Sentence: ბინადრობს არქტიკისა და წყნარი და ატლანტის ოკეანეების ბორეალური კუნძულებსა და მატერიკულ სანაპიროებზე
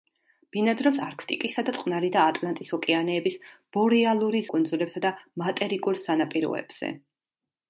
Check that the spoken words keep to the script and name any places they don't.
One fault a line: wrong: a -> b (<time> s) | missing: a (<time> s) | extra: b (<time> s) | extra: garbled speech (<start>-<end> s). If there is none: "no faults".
no faults